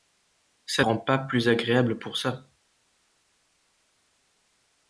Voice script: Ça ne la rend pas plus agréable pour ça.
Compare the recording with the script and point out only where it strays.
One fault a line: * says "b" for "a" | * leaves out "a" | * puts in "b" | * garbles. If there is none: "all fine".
* leaves out "ne la"